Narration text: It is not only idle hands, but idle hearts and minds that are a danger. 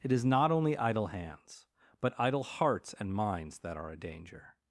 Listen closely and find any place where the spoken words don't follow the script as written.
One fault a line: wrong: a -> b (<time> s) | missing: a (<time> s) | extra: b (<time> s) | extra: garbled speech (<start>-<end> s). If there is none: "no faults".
no faults